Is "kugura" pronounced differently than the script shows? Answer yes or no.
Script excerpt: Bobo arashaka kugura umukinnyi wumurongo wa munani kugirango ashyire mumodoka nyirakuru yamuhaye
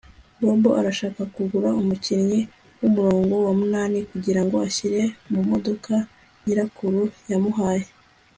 no